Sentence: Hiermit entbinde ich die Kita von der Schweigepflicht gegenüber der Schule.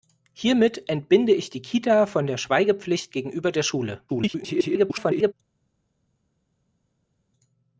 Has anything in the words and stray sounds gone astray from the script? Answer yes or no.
yes